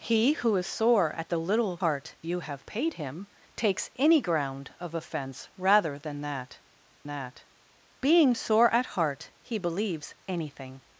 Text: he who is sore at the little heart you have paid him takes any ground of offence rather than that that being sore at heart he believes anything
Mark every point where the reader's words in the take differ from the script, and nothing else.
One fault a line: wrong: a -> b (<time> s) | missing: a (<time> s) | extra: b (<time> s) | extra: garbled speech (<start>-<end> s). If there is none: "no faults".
no faults